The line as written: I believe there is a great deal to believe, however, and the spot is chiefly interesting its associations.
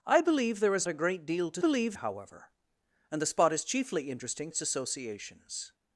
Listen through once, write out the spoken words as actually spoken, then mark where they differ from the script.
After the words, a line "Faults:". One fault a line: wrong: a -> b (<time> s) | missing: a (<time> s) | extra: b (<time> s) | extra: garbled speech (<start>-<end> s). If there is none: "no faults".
I believe there is a great deal to believe, however, and the spot is chiefly interesting its associations.
Faults:
no faults